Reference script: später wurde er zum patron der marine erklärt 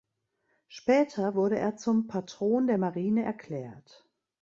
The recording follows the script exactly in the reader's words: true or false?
true